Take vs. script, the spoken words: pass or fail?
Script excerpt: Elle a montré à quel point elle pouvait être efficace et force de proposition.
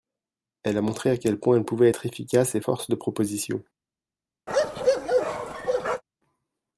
pass